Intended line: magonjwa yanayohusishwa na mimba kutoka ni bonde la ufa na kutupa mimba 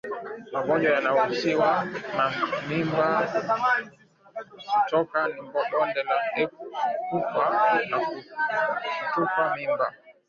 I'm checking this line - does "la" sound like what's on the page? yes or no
yes